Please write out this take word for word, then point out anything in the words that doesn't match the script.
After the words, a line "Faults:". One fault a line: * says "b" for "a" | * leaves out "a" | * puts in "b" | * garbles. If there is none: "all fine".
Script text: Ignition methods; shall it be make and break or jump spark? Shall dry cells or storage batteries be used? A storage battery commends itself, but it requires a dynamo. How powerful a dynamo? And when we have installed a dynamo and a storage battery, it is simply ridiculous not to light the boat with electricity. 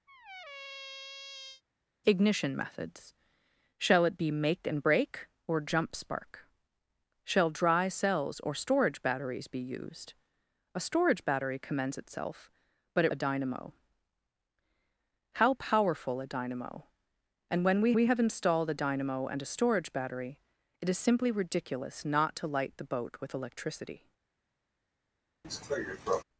Ignition methods; shall it be make and break or jump spark? Shall dry cells or storage batteries be used? A storage battery commends itself, but it a dynamo. How powerful a dynamo? And when we we have installed a dynamo and a storage battery, it is simply ridiculous not to light the boat with electricity.
Faults:
* leaves out "requires"
* puts in "we"